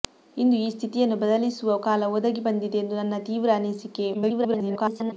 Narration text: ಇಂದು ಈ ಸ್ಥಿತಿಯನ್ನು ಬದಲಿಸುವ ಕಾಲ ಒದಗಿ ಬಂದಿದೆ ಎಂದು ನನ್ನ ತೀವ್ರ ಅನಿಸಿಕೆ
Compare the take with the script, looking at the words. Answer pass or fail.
fail